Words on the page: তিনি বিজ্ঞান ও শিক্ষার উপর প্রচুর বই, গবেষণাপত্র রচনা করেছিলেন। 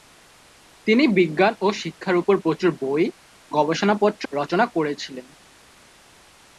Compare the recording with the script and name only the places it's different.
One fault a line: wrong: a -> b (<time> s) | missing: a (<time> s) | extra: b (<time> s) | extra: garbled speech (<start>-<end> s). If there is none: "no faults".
no faults